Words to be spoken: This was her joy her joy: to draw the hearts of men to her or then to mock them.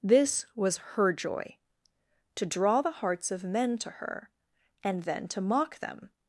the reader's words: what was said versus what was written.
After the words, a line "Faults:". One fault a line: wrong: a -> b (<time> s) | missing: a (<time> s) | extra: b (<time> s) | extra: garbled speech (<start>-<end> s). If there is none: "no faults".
This was her joy: to draw the hearts of men to her and then to mock them.
Faults:
missing: her joy (1.6 s)
wrong: or -> and (4.8 s)